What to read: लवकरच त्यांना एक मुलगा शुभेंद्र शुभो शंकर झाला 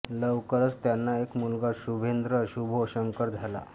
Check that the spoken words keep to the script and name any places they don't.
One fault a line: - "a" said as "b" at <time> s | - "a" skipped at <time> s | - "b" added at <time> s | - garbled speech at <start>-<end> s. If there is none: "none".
none